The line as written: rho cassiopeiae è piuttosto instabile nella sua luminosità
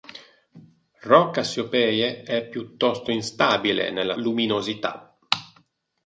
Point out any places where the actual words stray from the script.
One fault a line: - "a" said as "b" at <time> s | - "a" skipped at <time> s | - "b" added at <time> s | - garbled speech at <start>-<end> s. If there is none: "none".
- "sua" skipped at 4.2 s